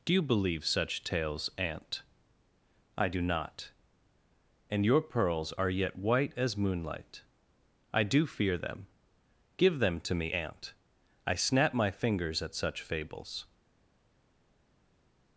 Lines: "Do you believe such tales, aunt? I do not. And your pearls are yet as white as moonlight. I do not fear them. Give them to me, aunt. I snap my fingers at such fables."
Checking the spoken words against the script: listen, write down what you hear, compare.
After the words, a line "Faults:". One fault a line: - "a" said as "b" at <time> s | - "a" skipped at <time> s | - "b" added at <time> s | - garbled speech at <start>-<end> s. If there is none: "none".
"Do you believe such tales, aunt? I do not. And your pearls are yet white as moonlight. I do fear them. Give them to me, aunt. I snap my fingers at such fables."
Faults:
- "as" skipped at 6.0 s
- "not" skipped at 8.3 s